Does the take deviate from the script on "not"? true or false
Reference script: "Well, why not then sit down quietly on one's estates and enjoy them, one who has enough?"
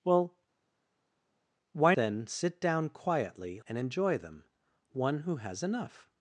true